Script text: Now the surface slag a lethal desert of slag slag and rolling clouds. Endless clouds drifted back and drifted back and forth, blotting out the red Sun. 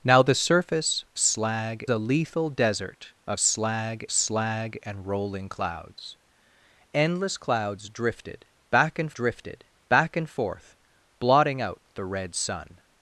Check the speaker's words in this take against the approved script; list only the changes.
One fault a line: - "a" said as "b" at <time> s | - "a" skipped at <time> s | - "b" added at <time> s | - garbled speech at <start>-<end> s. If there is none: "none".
none